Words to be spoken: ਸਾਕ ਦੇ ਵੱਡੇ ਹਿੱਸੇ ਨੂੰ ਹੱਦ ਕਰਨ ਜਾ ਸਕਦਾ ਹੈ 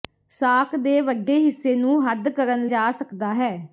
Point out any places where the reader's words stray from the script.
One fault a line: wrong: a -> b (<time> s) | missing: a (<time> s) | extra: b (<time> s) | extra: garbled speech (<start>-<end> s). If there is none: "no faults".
no faults